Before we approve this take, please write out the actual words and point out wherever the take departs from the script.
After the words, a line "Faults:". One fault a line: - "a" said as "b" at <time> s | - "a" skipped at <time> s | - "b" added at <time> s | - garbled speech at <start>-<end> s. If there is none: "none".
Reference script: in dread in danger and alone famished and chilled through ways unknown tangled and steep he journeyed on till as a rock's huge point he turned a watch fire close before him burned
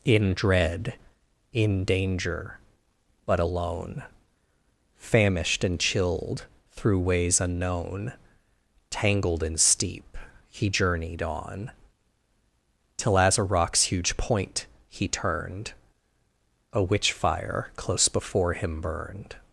in dread in danger but alone famished and chilled through ways unknown tangled and steep he journeyed on till as a rock's huge point he turned a witch fire close before him burned
Faults:
- "and" said as "but" at 3.3 s
- "watch" said as "witch" at 16.8 s